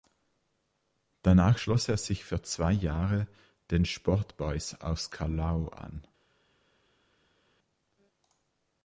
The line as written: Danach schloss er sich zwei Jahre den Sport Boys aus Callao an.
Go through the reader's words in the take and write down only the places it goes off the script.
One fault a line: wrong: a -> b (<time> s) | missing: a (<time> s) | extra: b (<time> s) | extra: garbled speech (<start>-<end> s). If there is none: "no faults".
extra: für (2.2 s)